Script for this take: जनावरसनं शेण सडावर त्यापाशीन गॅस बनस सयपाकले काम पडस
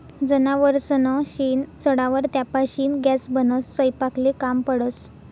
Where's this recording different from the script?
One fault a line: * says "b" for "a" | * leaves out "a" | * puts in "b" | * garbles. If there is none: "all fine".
all fine